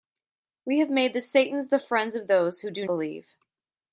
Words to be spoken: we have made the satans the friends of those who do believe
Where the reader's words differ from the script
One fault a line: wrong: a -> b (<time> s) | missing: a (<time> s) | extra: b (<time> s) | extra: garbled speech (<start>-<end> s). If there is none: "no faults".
no faults